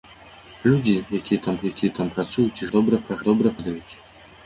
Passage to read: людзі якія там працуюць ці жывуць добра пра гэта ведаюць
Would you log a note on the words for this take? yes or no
yes